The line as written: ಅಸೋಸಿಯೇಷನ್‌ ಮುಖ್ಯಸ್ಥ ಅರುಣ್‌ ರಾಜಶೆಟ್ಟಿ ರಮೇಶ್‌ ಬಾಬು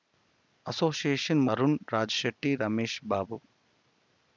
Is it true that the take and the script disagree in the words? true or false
true